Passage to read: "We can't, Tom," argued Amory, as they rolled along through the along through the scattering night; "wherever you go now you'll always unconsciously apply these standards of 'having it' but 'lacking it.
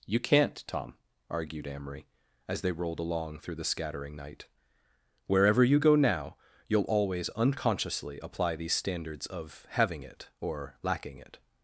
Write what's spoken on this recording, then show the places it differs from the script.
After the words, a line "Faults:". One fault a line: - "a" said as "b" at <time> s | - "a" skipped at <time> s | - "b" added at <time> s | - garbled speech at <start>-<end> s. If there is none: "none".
"You can't, Tom," argued Amory, as they rolled along through the scattering night; "wherever you go now you'll always unconsciously apply these standards of 'having it' or 'lacking it.
Faults:
- "We" said as "You" at 0.1 s
- "along through the" skipped at 3.6 s
- "but" said as "or" at 10.4 s